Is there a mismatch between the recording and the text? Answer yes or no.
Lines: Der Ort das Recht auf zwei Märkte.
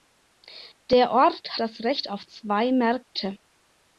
no